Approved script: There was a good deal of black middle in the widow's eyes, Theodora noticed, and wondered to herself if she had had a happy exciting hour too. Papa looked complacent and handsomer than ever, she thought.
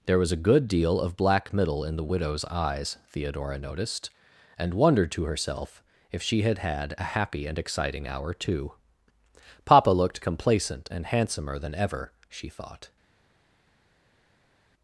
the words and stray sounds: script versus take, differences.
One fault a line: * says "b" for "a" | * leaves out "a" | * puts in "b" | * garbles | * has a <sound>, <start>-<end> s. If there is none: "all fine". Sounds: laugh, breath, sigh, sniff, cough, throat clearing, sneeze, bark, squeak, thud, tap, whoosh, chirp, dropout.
* puts in "and"